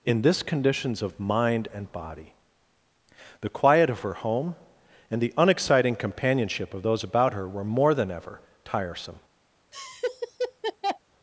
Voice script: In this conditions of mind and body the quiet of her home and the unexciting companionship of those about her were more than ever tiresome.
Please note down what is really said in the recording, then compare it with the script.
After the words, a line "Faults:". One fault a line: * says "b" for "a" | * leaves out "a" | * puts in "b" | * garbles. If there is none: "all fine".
In this conditions of mind and body the quiet of her home and the unexciting companionship of those about her were more than ever tiresome.
Faults:
all fine